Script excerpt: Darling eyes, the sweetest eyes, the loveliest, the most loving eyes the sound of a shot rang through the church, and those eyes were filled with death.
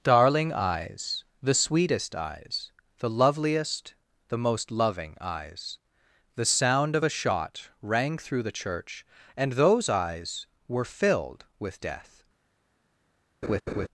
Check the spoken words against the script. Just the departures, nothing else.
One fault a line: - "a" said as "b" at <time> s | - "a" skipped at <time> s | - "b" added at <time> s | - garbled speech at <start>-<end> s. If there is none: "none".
none